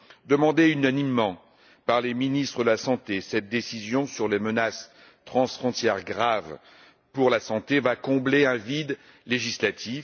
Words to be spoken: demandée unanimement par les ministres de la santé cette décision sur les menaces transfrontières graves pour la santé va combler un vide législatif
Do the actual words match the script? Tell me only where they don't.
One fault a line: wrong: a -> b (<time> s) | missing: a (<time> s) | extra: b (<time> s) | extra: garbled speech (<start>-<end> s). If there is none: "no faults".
no faults